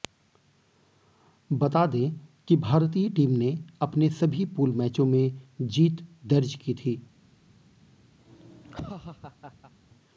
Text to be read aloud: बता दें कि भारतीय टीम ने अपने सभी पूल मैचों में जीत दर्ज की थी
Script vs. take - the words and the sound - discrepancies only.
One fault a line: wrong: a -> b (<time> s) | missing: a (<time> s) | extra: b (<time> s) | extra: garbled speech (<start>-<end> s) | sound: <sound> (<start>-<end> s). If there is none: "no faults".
sound: laugh (8.2-9.7 s)